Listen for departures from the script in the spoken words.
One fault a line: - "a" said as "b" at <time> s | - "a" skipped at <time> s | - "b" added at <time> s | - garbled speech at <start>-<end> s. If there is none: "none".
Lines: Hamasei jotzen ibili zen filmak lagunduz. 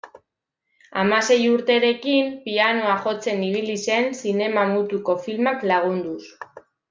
- "urterekin pianoa" added at 1.5 s
- "zinema mutuko" added at 4.2 s